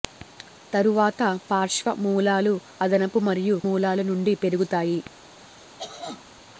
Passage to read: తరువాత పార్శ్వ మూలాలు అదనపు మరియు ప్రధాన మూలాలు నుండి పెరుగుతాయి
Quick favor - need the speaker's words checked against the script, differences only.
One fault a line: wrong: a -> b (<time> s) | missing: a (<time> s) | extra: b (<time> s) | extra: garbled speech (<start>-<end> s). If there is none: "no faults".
missing: ప్రధాన (3.6 s)